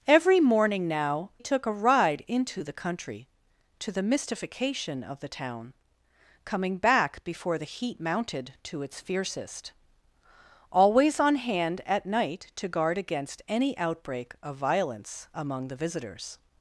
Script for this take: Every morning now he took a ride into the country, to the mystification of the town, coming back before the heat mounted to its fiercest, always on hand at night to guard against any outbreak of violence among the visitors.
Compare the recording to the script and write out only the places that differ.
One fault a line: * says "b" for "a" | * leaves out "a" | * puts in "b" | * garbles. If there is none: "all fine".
* leaves out "he"